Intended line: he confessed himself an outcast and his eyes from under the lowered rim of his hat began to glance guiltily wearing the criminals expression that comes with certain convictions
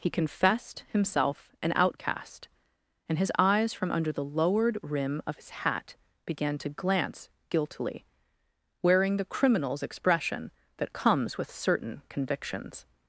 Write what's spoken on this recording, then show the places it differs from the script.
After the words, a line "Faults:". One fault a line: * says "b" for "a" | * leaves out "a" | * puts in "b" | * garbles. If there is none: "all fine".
he confessed himself an outcast and his eyes from under the lowered rim of his hat began to glance guiltily wearing the criminals expression that comes with certain convictions
Faults:
all fine